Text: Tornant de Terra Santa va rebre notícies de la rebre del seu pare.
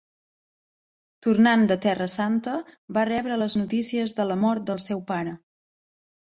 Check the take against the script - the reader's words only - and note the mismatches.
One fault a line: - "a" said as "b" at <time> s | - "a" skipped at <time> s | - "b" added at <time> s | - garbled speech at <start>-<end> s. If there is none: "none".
- "les" added at 3.4 s
- "rebre" said as "mort" at 4.4 s